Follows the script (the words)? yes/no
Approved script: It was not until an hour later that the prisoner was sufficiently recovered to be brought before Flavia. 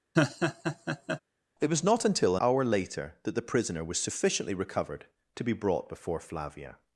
no